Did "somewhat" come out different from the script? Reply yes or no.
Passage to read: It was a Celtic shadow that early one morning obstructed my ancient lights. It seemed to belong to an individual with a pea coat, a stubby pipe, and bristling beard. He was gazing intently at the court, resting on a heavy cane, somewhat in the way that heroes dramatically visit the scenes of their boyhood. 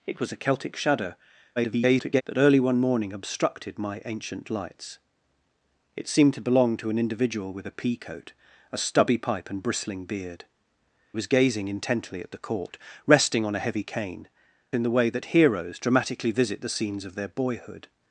yes